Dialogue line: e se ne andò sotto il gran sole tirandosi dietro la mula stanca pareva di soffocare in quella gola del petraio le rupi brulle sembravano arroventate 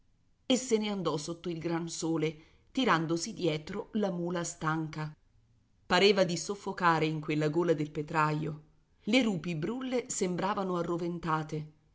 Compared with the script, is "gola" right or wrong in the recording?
right